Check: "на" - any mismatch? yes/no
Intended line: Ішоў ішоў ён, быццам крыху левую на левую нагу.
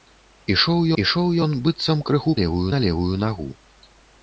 no